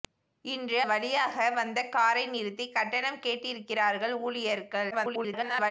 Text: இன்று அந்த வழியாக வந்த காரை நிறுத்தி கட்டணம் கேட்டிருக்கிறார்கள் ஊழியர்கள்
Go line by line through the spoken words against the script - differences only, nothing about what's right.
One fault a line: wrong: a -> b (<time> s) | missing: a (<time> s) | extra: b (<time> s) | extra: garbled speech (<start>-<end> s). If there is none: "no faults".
missing: அந்த (0.8 s)
extra: garbled speech (4.9-5.7 s)